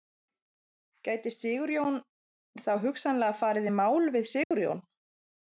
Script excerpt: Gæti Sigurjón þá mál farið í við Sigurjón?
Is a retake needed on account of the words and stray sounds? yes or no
yes